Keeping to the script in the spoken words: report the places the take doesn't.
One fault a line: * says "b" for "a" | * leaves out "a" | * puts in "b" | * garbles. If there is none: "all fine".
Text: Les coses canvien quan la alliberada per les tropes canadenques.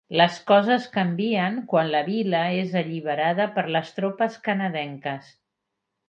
* puts in "vila és"